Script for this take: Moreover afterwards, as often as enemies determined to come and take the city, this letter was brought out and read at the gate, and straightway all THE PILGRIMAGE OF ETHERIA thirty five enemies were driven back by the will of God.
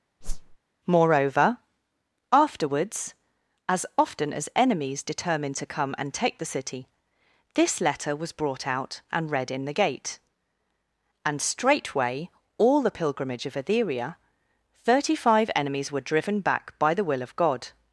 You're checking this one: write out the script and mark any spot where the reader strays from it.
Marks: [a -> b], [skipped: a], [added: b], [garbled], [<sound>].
[whoosh] Moreover afterwards, as often as enemies determined to come and take the city, this letter was brought out and read [at -> in] the gate, and straightway all THE PILGRIMAGE OF ETHERIA thirty five enemies were driven back by the will of God.